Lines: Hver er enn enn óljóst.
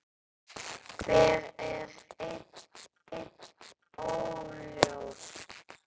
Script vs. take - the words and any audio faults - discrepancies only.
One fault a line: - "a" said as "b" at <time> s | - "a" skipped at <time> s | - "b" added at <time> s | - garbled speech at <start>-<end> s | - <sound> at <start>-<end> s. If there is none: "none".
none